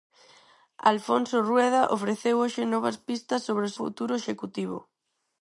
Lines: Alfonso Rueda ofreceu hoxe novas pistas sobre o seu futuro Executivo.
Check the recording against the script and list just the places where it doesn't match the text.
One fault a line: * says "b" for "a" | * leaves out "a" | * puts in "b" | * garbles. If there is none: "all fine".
* leaves out "seu"